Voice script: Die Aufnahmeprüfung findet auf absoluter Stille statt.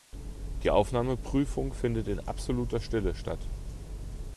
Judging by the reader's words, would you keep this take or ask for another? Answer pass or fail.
fail